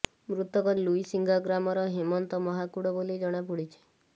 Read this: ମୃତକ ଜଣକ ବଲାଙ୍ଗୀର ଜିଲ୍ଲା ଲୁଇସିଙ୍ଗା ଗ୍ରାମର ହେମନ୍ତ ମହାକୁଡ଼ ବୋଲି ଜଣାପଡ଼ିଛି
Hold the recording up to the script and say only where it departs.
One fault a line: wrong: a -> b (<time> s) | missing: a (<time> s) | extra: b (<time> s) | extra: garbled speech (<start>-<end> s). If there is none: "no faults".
missing: ଜଣକ ବଲାଙ୍ଗୀର ଜିଲ୍ଲା (0.7 s)